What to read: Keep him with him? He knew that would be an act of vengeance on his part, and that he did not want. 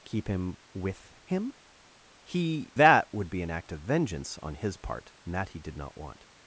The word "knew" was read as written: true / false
false